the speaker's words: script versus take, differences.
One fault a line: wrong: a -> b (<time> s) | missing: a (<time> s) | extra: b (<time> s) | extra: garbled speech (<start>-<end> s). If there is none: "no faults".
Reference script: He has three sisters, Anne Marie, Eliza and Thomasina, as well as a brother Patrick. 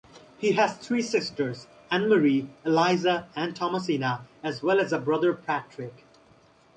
no faults